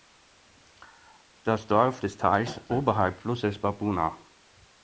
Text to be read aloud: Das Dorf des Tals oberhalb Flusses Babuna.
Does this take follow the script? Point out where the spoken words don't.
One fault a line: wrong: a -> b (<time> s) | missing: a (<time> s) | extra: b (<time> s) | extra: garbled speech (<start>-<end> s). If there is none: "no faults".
no faults